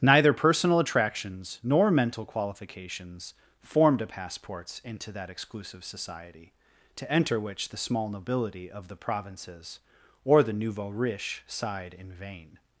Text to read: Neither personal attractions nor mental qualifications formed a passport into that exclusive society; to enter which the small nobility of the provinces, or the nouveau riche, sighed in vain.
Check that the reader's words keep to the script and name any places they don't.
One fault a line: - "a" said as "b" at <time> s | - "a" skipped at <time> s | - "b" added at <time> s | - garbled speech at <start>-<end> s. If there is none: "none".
- "passport" said as "passports" at 4.1 s